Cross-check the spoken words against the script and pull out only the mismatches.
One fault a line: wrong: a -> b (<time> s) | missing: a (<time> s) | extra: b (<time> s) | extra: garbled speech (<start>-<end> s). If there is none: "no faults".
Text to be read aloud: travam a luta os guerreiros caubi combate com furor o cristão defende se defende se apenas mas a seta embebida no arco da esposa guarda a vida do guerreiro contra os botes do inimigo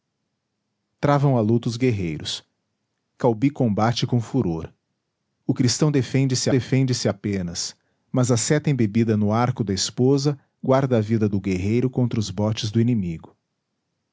no faults